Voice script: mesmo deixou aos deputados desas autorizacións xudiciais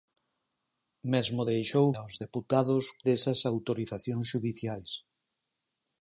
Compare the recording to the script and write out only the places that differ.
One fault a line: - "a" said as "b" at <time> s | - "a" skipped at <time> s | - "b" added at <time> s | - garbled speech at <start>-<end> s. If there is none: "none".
none